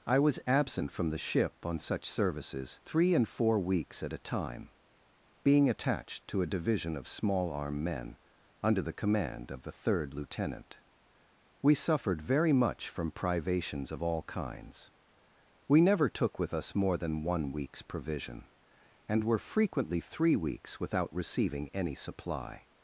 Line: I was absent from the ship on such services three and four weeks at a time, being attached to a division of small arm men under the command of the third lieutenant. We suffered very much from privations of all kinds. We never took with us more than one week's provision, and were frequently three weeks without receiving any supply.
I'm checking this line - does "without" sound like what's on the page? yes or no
yes